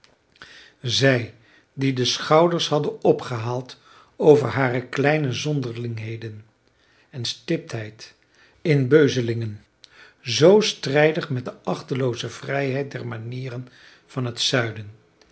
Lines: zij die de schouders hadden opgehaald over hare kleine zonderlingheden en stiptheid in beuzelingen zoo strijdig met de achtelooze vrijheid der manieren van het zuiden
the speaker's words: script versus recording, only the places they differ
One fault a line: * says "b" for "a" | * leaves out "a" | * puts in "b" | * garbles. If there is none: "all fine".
all fine